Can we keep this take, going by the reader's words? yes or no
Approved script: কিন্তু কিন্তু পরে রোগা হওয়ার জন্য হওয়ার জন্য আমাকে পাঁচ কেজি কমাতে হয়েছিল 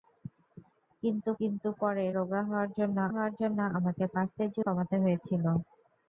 yes